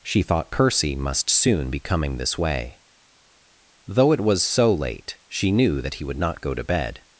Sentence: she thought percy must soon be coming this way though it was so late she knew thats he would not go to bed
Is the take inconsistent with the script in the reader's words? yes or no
yes